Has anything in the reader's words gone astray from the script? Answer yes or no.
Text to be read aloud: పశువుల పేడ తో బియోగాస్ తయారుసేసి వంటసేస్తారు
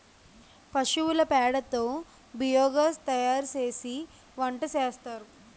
no